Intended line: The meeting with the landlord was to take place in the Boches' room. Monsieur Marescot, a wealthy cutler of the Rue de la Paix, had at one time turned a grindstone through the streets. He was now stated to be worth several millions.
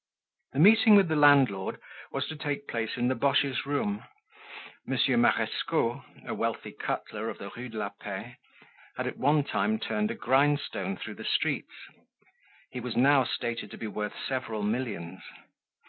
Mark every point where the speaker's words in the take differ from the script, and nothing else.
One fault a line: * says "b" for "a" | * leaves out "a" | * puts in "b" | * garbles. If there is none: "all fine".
all fine